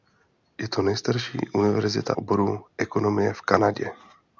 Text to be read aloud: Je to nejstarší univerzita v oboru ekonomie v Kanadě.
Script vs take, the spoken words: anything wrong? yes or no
yes